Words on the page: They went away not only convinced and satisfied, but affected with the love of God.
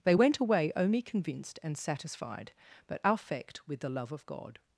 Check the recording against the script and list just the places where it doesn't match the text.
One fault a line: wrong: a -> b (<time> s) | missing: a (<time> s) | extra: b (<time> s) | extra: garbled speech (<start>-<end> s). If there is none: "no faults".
missing: not (0.7 s)
wrong: affected -> affect (3.0 s)